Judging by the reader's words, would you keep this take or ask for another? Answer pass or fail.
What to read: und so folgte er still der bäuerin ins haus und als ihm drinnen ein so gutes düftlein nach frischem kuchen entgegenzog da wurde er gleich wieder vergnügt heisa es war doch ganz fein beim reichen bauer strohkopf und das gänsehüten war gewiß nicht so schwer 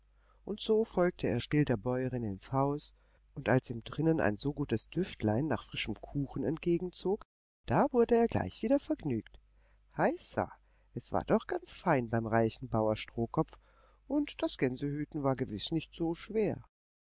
pass